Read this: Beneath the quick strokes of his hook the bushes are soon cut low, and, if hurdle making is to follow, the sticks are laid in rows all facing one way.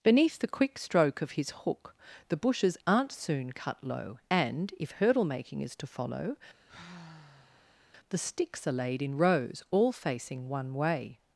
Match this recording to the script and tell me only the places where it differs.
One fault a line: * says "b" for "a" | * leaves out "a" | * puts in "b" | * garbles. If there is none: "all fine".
* says "stroke" for "strokes"
* says "aren't" for "are"